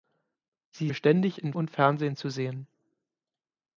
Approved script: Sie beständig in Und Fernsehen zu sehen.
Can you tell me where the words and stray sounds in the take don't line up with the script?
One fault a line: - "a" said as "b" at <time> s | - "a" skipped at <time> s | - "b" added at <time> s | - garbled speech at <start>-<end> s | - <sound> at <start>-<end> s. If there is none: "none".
none